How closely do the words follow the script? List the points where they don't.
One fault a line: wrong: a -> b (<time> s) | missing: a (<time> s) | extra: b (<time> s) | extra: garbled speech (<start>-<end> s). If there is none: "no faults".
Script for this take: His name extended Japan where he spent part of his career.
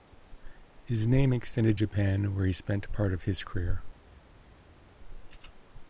no faults